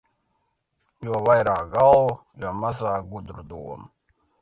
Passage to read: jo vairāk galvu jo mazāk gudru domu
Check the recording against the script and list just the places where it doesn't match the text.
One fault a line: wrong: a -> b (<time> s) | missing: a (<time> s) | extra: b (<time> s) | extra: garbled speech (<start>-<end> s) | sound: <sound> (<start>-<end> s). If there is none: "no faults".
no faults